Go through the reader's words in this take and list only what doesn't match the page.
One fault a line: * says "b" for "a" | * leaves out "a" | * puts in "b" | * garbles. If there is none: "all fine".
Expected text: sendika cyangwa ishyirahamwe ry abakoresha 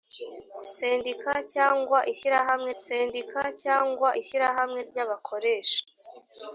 * puts in "sendika cyangwa ishyirahamwe"